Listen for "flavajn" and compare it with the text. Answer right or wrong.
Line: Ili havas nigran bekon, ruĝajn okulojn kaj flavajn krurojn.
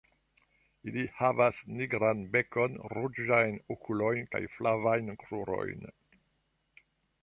right